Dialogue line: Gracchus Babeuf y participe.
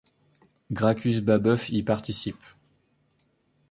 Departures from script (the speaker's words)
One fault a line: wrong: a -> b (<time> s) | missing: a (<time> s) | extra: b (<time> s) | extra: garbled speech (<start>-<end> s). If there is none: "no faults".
no faults